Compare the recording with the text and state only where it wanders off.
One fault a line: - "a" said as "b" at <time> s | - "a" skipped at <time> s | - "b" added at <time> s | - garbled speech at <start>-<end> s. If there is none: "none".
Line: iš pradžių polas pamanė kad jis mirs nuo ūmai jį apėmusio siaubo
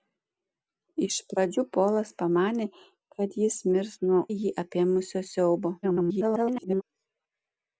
- "ūmai" skipped at 4.2 s
- garbled speech at 5.8-6.8 s